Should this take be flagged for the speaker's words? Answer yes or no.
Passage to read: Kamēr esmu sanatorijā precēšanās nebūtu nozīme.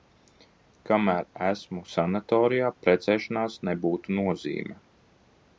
no